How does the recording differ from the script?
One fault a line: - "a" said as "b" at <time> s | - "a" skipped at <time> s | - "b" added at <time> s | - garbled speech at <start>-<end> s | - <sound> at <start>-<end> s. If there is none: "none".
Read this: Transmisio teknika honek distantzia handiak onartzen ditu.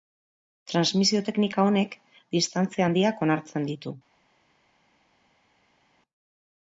none